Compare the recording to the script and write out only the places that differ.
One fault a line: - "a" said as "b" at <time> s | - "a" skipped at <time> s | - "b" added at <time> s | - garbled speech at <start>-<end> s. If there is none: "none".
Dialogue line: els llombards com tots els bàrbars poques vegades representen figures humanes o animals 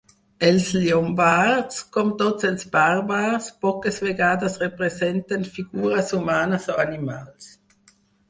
none